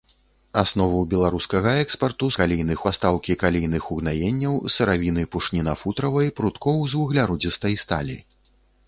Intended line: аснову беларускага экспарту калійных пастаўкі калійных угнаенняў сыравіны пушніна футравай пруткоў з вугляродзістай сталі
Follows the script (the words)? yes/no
yes